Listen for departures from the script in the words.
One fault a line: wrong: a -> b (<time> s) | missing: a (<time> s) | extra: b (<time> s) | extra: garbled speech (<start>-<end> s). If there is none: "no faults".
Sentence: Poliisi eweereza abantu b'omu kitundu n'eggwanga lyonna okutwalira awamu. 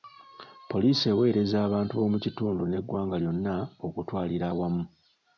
no faults